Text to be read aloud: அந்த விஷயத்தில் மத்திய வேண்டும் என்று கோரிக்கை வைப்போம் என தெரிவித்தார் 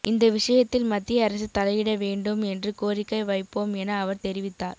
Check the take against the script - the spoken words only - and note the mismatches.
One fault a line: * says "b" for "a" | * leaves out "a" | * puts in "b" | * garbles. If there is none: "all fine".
* says "இந்த" for "அந்த"
* puts in "அரசு தலையிட"
* puts in "அவர்"